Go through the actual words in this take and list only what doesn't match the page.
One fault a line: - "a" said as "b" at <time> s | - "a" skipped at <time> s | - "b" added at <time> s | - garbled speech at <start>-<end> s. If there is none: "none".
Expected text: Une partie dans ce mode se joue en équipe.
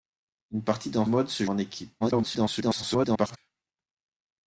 - "ce" skipped at 1.1 s
- "joue" skipped at 1.4 s
- garbled speech at 2.0-3.4 s